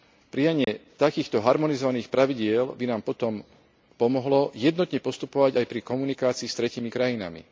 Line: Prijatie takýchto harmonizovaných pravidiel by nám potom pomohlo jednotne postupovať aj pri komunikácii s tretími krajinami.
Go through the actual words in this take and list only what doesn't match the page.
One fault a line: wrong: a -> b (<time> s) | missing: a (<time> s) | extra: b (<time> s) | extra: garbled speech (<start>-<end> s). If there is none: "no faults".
no faults